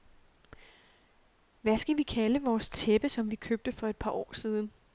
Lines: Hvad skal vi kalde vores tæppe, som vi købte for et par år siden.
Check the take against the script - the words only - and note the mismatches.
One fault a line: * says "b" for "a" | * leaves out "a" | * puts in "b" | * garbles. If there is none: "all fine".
all fine